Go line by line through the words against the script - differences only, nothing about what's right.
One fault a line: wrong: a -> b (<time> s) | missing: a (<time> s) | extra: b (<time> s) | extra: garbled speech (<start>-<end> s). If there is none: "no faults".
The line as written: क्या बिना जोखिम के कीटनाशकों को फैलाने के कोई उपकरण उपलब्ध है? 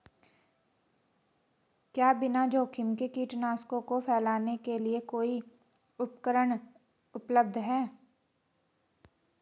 extra: लिए (4.8 s)